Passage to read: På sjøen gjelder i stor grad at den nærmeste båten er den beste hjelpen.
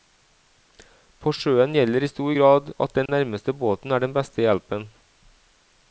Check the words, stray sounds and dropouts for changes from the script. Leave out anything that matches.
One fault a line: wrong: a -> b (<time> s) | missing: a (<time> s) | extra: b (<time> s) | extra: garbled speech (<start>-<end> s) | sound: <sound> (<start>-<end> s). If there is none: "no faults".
sound: dropout (3.1-3.1 s)